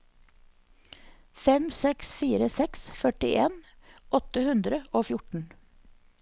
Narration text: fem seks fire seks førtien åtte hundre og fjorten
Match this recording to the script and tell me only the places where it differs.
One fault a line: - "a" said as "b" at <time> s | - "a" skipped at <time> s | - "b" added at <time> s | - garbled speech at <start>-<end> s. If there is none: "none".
none